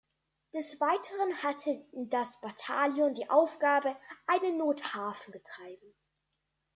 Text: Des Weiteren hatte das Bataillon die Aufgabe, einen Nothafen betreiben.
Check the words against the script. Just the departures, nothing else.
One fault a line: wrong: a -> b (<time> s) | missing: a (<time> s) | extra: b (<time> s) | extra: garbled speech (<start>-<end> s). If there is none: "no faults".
no faults